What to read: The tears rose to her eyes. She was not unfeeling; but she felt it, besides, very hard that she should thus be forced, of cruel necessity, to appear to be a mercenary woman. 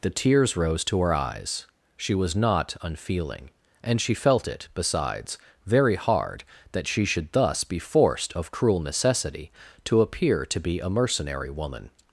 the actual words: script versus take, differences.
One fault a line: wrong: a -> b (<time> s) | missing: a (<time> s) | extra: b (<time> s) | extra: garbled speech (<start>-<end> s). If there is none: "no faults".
wrong: but -> and (3.8 s)